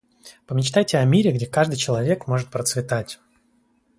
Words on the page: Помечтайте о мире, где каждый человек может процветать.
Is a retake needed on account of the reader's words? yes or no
no